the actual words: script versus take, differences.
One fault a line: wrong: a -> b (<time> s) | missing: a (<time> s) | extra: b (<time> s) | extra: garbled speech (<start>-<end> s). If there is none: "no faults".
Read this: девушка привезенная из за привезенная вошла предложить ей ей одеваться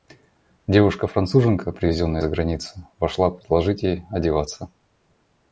extra: француженка (1.0 s)
wrong: привезенная -> границы (2.3 s)
missing: ей (4.0 s)